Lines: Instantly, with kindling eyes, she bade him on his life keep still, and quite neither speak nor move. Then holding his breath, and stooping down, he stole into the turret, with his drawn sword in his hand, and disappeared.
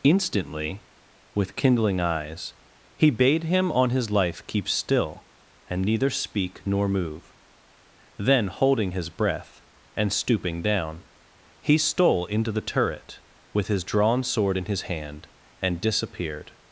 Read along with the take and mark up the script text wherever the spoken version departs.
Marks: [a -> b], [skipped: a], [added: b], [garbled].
Instantly, with kindling eyes, [she -> he] bade him on his life keep still, and [skipped: quite] neither speak nor move. Then holding his breath, and stooping down, he stole into the turret, with his drawn sword in his hand, and disappeared.